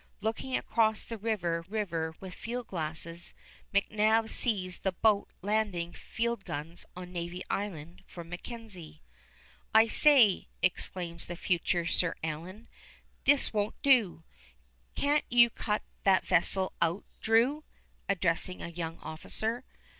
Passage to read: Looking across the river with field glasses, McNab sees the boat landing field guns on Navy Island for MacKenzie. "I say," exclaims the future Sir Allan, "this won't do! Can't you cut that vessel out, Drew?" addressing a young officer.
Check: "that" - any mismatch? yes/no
no